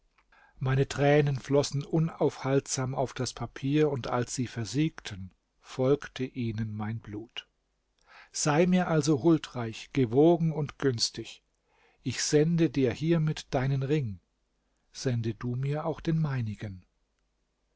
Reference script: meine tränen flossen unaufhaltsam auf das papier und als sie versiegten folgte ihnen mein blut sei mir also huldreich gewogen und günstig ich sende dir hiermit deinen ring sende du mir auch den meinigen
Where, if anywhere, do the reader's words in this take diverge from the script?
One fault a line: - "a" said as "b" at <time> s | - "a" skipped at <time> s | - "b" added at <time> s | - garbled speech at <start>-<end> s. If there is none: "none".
none